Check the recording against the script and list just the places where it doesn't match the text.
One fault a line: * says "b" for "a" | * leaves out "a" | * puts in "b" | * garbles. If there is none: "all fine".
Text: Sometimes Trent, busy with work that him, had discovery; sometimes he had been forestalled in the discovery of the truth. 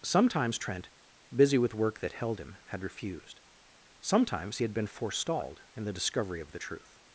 * puts in "held"
* says "refused" for "discovery"